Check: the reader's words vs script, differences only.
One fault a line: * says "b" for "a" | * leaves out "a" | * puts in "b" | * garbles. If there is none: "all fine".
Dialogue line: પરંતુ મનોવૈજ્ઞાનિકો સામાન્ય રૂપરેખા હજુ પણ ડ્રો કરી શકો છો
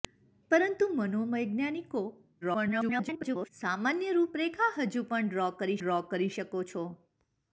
* garbles
* puts in "ડ્રો કરી"